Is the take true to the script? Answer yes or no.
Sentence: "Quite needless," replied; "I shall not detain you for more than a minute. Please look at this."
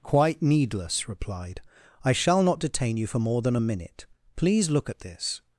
yes